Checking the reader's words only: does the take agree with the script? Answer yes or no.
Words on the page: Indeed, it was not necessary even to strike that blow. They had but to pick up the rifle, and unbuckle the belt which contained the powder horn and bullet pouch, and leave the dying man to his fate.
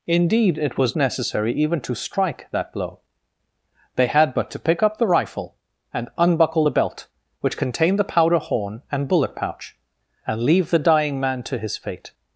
no